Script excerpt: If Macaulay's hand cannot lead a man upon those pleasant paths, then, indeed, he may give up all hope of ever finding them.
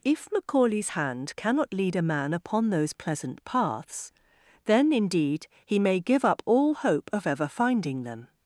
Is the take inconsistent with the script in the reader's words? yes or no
no